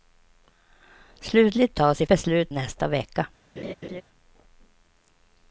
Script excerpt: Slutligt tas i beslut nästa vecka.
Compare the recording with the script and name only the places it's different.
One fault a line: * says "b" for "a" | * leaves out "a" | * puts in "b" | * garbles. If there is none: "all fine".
all fine